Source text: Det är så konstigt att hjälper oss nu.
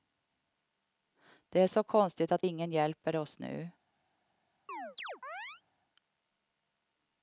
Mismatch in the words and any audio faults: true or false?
true